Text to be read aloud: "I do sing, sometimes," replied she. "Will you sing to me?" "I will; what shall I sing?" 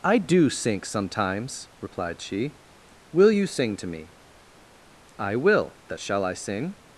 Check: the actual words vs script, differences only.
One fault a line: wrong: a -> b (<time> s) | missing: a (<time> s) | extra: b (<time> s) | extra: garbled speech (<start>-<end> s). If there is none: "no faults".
wrong: sing -> sink (0.5 s)
wrong: what -> that (5.9 s)